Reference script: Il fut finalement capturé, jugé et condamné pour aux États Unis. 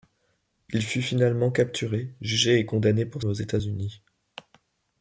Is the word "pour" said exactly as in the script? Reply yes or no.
yes